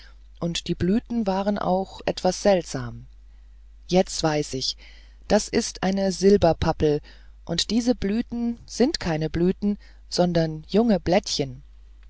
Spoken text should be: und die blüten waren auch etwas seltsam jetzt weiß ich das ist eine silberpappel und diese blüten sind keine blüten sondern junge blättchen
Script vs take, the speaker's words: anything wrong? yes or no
no